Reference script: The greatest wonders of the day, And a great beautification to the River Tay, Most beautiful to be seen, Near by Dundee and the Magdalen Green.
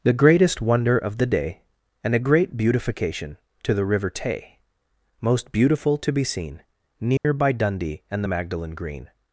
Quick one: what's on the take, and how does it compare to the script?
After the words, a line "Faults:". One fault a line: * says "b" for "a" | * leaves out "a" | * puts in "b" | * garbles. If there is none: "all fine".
The greatest wonder of the day, And a great beautification to the River Tay, Most beautiful to be seen, Near by Dundee and the Magdalen Green.
Faults:
* says "wonder" for "wonders"